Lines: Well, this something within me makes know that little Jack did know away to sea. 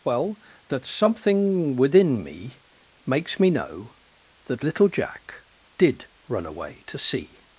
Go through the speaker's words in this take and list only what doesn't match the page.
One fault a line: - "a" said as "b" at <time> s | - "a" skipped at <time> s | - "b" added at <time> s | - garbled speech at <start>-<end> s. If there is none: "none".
- "this" said as "that" at 0.7 s
- "me" added at 3.4 s
- "know" said as "run" at 6.3 s